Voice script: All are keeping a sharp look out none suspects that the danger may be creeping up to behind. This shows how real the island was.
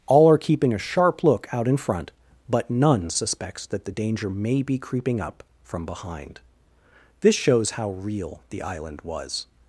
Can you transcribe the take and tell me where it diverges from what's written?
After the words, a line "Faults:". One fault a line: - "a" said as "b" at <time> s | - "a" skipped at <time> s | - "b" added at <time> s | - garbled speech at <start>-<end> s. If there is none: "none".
All are keeping a sharp look out in front, but none suspects that the danger may be creeping up from behind. This shows how real the island was.
Faults:
- "in front but" added at 1.7 s
- "to" said as "from" at 5.6 s